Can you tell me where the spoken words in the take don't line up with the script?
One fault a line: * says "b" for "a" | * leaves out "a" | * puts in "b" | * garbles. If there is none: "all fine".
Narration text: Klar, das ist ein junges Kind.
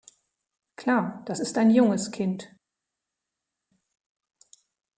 all fine